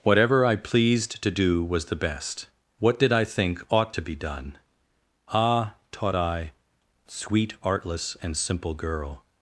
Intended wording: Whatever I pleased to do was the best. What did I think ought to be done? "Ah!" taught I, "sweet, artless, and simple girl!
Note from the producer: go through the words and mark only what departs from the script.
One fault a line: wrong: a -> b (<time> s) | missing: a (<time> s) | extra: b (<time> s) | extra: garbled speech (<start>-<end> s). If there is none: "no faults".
no faults